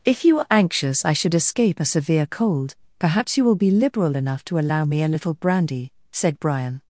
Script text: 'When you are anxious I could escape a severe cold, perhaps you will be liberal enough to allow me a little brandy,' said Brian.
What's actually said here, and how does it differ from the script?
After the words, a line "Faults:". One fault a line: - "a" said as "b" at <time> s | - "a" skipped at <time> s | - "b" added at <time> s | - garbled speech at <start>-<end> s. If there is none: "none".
'If you are anxious I should escape a severe cold, perhaps you will be liberal enough to allow me a little brandy,' said Brian.
Faults:
- "When" said as "If" at 0.0 s
- "could" said as "should" at 1.1 s